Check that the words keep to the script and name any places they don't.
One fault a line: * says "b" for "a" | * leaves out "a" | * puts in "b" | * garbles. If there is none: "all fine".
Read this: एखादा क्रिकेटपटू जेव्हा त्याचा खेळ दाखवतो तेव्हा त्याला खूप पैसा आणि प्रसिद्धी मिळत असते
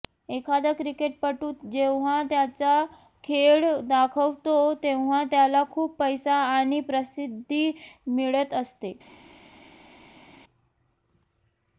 all fine